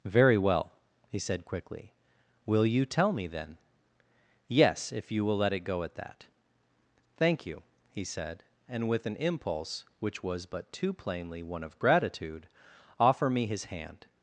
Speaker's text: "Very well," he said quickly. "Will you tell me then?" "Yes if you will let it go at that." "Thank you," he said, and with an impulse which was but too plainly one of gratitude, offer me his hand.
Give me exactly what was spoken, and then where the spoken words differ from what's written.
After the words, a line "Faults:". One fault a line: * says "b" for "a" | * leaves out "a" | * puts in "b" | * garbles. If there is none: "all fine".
"Very well," he said quickly. "Will you tell me then?" "Yes if you will let it go at that." "Thank you," he said, and with an impulse which was but too plainly one of gratitude, offer me his hand.
Faults:
all fine